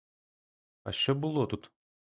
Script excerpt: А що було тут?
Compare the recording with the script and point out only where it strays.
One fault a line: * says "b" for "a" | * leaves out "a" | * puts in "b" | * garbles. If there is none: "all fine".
all fine